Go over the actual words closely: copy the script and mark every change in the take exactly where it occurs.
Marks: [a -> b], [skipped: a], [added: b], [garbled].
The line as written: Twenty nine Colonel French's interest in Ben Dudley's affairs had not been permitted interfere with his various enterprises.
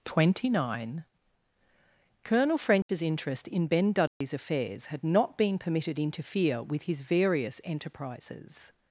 Twenty nine Colonel French's interest in Ben Dudley's affairs had not been permitted interfere with his various enterprises.